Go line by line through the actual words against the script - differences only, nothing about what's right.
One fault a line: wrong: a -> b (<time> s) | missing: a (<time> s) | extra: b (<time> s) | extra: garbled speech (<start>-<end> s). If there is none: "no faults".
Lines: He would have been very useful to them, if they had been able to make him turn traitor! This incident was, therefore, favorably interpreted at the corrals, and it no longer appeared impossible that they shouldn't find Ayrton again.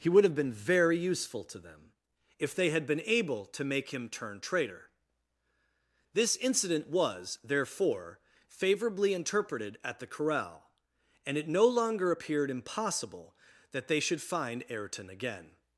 wrong: corrals -> corral (10.1 s)
wrong: shouldn't -> should (14.0 s)